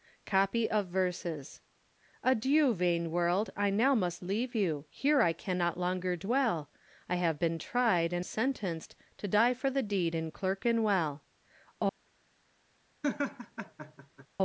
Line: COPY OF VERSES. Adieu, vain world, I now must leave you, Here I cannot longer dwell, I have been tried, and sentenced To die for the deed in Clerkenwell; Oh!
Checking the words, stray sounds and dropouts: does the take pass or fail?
fail